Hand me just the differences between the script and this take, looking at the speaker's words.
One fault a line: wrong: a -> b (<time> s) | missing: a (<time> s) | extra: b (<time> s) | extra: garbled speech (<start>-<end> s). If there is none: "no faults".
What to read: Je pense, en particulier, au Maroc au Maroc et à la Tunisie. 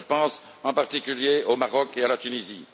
missing: au Maroc (1.9 s)